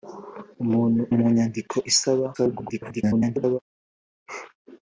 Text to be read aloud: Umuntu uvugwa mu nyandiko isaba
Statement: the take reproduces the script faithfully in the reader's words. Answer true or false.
false